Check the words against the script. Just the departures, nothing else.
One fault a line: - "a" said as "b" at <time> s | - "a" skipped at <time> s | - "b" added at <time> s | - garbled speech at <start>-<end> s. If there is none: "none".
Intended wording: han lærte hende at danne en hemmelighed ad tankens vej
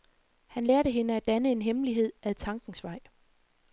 none